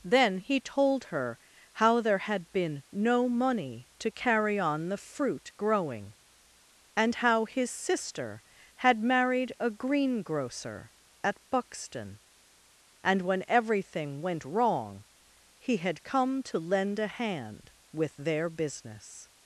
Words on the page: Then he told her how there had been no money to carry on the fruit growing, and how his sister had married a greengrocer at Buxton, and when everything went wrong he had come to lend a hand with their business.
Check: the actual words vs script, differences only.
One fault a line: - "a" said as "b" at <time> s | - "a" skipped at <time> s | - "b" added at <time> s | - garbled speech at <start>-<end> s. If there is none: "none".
none